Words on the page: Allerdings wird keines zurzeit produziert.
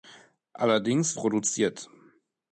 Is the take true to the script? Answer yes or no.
no